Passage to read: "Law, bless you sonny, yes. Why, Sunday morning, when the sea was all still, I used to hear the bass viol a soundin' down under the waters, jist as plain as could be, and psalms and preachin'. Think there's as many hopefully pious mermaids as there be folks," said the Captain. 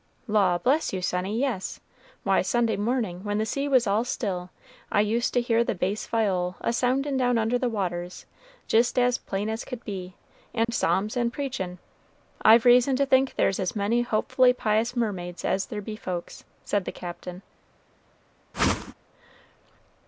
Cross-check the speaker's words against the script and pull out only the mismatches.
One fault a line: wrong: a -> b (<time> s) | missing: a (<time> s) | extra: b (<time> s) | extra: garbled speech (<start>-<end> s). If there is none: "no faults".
extra: I've reason to (12.4 s)